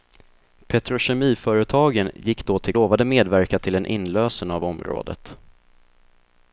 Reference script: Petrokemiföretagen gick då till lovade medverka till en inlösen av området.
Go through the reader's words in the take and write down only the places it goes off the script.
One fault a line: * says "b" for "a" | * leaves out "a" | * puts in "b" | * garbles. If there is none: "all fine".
all fine